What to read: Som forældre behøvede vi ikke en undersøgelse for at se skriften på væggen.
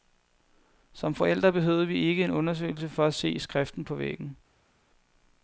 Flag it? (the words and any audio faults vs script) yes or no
no